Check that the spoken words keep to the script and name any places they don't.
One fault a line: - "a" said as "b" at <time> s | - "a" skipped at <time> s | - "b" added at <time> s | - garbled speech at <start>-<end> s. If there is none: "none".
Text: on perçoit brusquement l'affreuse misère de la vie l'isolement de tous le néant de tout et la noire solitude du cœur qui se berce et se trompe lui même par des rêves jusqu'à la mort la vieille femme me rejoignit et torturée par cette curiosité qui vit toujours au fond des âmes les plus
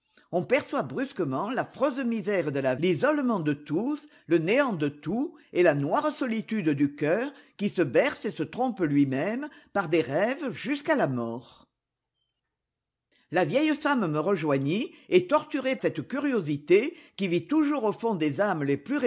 - "vie" skipped at 2.8 s
- "par" skipped at 15.8 s